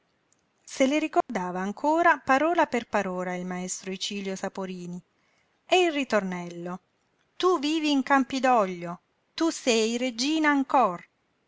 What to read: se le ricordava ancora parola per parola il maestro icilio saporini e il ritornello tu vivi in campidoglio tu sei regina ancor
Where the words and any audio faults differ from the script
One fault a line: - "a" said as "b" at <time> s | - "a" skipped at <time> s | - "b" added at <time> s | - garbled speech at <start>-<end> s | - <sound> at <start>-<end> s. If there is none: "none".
- dropout at 1.2-1.3 s